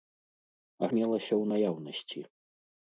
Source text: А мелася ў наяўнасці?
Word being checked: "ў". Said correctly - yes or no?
yes